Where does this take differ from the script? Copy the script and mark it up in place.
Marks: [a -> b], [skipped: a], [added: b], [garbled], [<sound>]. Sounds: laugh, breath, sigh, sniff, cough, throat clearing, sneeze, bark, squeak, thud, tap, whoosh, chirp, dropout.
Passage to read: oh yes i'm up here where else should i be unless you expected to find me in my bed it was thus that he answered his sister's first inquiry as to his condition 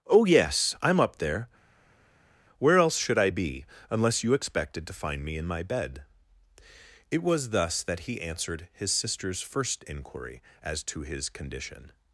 oh yes i'm up [here -> there] where else should i be unless you expected to find me in my bed it was thus that he answered his sister's first inquiry as to his condition